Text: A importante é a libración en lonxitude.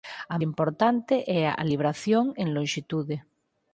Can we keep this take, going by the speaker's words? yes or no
yes